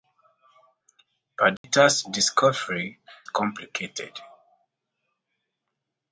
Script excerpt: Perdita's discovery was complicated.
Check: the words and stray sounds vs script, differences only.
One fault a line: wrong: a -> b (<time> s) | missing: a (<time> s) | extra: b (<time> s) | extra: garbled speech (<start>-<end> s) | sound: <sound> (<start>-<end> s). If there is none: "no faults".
sound: dropout (1.6-1.6 s)
missing: was (3.0 s)